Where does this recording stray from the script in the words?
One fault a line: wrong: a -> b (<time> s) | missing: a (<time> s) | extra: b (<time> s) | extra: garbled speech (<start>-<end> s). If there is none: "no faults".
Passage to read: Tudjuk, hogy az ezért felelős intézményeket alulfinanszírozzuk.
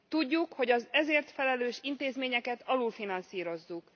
no faults